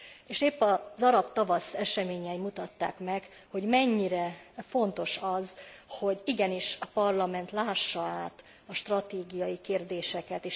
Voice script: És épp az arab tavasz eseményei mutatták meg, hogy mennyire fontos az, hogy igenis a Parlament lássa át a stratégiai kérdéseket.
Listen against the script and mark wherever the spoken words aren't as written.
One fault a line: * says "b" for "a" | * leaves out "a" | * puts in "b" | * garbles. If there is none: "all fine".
all fine